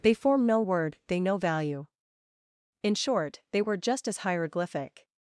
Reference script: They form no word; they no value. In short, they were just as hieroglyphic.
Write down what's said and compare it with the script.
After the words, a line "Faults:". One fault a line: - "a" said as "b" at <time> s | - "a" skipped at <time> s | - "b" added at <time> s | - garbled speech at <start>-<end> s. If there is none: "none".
They form no word; they no value. In short, they were just as hieroglyphic.
Faults:
none